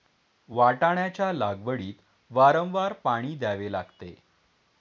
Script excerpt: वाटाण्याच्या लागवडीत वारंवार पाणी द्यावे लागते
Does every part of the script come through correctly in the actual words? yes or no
yes